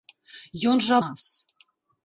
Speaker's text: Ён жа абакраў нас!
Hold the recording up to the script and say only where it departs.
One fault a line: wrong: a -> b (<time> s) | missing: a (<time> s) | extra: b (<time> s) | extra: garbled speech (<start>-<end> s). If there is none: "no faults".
missing: абакраў (0.9 s)